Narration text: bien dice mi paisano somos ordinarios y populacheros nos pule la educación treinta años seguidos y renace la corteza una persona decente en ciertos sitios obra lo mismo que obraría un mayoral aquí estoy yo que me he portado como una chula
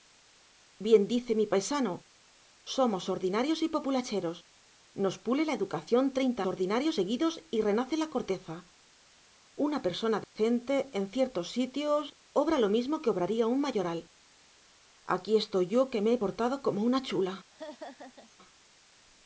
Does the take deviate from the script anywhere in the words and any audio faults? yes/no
yes